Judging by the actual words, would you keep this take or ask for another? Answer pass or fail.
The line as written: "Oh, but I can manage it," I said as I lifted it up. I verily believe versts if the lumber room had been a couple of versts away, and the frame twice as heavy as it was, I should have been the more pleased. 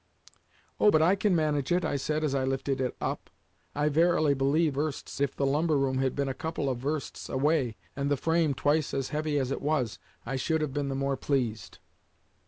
pass